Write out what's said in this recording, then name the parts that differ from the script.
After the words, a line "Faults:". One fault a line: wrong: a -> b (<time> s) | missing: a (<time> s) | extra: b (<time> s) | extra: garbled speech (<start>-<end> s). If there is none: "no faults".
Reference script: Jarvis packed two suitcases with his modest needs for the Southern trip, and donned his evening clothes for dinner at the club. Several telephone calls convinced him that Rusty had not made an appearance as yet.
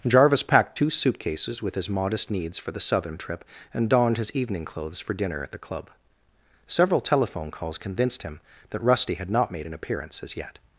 Jarvis packed two suitcases with his modest needs for the Southern trip, and donned his evening clothes for dinner at the club. Several telephone calls convinced him that Rusty had not made an appearance as yet.
Faults:
no faults